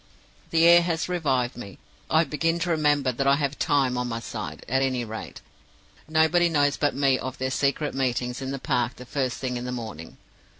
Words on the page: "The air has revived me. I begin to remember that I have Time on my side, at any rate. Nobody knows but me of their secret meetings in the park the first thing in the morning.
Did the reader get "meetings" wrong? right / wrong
right